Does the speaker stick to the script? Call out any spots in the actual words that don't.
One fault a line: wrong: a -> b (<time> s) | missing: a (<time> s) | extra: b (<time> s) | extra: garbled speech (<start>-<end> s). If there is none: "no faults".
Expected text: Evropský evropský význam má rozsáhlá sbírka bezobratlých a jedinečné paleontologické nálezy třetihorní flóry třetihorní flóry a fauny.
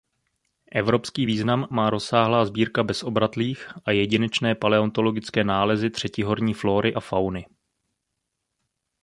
missing: evropský (1.2 s)
missing: třetihorní flóry (6.9 s)